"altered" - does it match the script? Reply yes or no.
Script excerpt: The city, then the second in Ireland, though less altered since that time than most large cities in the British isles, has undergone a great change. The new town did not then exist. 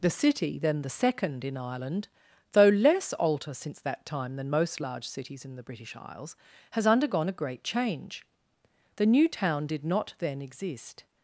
no